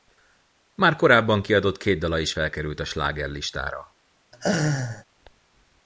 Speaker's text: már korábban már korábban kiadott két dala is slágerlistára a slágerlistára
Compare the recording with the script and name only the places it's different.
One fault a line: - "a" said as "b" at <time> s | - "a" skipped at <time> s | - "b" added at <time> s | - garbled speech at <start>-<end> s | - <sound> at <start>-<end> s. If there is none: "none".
- "már korábban" skipped at 1.4 s
- "slágerlistára" said as "felkerült" at 2.3 s
- laugh at 4.3-5.0 s